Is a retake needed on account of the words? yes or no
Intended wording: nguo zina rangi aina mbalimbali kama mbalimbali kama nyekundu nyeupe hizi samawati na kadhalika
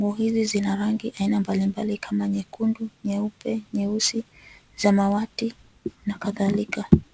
yes